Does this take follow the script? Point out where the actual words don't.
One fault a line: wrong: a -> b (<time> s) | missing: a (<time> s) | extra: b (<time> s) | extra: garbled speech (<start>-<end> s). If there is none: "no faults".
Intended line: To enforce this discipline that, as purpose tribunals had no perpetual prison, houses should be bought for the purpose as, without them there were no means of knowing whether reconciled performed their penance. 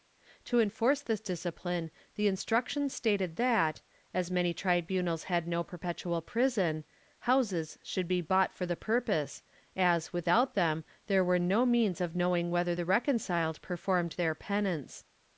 extra: the Instructions stated (2.1 s)
wrong: purpose -> many (4.3 s)
extra: the (12.7 s)